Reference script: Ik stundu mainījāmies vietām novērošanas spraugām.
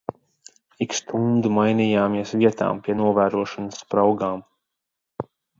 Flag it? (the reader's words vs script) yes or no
yes